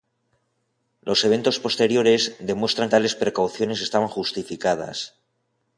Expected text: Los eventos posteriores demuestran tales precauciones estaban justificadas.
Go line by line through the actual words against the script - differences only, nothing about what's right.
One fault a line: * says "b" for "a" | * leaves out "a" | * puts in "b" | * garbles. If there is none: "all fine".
all fine